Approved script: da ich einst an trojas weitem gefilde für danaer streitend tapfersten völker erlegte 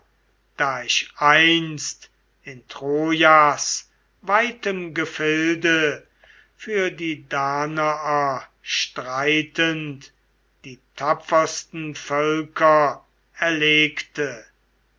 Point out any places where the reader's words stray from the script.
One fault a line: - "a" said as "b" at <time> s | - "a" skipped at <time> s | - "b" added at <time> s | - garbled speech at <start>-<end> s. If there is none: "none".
- "an" said as "in" at 2.4 s
- "die" added at 6.9 s
- "die" added at 10.7 s